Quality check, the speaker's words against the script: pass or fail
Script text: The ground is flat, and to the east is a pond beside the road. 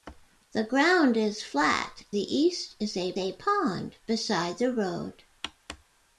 fail